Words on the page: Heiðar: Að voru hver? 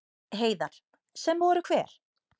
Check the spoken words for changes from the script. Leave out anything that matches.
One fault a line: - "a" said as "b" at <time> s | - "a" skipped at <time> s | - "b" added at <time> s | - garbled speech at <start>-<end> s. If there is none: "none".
- "Að" said as "Sem" at 1.2 s